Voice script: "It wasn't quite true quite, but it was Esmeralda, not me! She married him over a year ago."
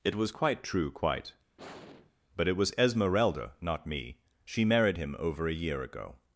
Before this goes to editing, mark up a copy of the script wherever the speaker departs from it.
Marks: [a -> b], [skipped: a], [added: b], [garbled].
"It [wasn't -> was] quite true quite, but it was Esmeralda, not me! She married him over a year ago."